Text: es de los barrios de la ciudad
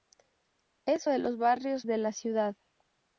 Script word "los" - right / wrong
right